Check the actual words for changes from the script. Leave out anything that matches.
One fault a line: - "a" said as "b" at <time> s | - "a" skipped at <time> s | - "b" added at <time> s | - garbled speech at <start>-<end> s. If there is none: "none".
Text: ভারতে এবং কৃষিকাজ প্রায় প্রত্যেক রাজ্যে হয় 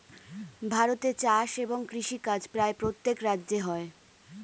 - "চাষ" added at 1.2 s